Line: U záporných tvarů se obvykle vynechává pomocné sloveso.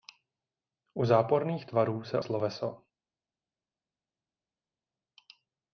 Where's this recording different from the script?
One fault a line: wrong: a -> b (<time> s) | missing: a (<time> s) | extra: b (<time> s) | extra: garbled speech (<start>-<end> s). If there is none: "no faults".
missing: obvykle vynechává pomocné (2.2 s)